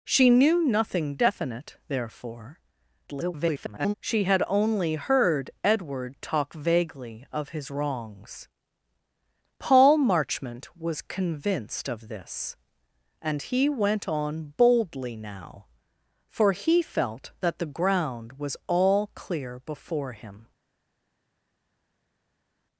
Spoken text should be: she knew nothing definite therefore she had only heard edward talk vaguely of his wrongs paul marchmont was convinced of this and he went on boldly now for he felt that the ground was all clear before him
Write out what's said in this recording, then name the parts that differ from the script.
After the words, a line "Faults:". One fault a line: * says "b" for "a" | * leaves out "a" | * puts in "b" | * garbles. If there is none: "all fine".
she knew nothing definite therefore [garbled] she had only heard edward talk vaguely of his wrongs paul marchmont was convinced of this and he went on boldly now for he felt that the ground was all clear before him
Faults:
* garbles